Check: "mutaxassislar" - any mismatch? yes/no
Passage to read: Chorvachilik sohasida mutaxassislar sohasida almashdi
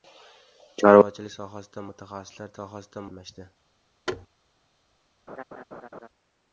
no